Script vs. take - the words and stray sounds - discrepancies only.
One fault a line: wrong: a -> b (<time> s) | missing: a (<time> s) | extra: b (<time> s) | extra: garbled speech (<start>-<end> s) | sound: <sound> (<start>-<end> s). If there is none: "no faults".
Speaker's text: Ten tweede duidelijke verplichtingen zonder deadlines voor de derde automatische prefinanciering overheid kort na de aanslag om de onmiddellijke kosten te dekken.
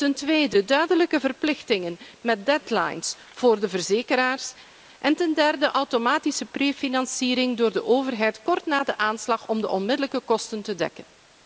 wrong: zonder -> met (2.2 s)
extra: verzekeraars en ten (3.7 s)
extra: door de (7.6 s)